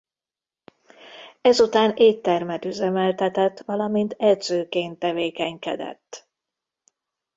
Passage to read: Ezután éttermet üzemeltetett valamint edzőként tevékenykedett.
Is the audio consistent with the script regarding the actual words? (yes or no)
yes